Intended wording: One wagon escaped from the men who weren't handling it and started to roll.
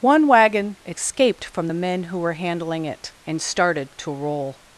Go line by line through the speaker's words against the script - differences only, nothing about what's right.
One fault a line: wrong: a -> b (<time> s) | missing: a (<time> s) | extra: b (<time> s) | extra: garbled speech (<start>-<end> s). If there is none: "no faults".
wrong: weren't -> were (2.2 s)